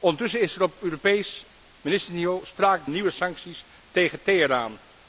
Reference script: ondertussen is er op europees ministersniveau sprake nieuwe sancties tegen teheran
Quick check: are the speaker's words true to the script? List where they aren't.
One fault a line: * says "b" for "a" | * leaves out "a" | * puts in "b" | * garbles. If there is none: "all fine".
all fine